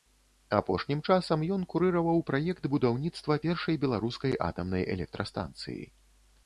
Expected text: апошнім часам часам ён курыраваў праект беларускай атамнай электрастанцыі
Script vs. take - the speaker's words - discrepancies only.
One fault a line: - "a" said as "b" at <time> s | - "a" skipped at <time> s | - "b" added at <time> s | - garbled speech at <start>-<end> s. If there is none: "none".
- "часам" skipped at 1.4 s
- "будаўніцтва першай" added at 2.8 s